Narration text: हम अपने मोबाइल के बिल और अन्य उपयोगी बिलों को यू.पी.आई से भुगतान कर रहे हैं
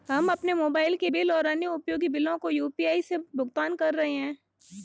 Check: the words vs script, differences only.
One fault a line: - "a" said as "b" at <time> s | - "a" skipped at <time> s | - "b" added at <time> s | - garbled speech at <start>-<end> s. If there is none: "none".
none